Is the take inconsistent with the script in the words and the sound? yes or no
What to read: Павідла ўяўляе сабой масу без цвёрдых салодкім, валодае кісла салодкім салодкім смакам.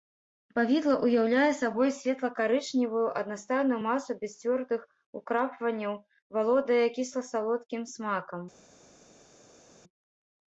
yes